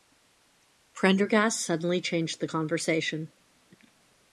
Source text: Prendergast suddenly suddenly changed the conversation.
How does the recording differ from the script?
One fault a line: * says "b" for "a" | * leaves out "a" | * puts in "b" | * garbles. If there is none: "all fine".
* leaves out "suddenly"